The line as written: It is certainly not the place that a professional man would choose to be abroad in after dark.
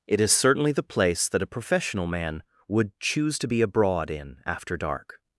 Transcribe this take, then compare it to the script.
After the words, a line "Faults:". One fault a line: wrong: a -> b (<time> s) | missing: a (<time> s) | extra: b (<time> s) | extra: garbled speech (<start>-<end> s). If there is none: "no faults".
It is certainly the place that a professional man would choose to be abroad in after dark.
Faults:
missing: not (0.7 s)